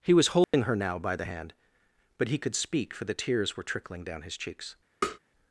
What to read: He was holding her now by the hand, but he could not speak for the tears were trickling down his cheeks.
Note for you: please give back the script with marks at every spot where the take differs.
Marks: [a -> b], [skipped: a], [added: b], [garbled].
He was holding her now by the hand, but he could [skipped: not] speak for the tears were trickling down his cheeks.